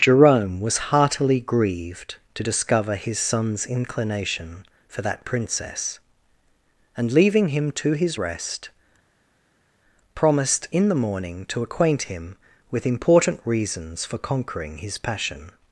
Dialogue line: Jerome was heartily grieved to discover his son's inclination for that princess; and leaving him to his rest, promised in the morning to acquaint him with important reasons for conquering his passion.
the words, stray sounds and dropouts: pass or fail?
pass